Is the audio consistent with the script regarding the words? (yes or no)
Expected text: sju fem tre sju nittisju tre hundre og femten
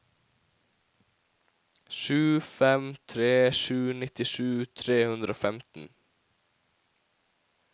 yes